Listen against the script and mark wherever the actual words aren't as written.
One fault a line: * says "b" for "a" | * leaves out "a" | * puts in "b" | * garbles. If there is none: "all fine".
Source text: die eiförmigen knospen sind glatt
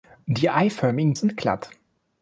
* leaves out "knospen"